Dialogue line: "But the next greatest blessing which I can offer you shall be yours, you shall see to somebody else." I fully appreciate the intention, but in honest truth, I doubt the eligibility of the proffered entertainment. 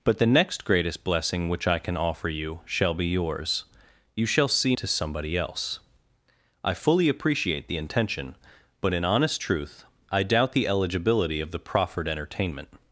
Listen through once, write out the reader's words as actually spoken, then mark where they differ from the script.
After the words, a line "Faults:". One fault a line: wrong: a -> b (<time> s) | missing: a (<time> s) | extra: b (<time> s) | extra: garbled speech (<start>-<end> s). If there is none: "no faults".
"But the next greatest blessing which I can offer you shall be yours, you shall see to somebody else." I fully appreciate the intention, but in honest truth, I doubt the eligibility of the proffered entertainment.
Faults:
no faults